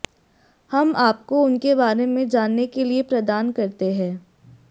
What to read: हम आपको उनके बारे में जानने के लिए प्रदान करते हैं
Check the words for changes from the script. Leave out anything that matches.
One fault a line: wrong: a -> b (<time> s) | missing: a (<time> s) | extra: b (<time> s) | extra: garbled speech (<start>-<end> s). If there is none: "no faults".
no faults